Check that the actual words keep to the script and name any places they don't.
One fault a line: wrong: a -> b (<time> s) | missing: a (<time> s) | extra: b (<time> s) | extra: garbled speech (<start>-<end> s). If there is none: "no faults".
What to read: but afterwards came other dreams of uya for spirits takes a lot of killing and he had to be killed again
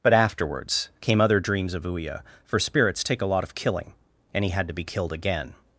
wrong: takes -> take (3.0 s)